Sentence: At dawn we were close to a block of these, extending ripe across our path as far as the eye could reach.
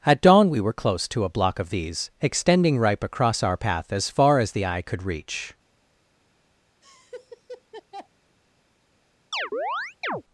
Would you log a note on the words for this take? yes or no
no